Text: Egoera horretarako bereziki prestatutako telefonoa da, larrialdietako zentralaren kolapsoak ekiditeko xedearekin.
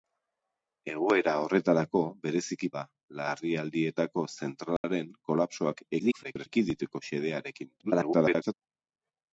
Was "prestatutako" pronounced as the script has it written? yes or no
no